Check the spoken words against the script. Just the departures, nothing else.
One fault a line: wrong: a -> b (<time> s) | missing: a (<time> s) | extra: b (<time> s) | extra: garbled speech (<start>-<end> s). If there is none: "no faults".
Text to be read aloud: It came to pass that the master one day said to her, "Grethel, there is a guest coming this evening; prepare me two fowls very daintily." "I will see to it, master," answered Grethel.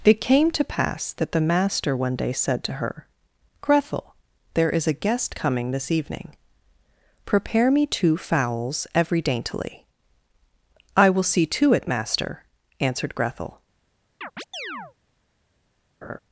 wrong: very -> every (8.9 s)